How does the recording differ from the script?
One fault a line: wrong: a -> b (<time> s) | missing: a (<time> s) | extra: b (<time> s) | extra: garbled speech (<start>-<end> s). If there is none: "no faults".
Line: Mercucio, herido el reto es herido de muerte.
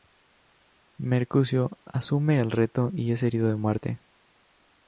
wrong: herido -> asume (1.9 s)
extra: y (2.9 s)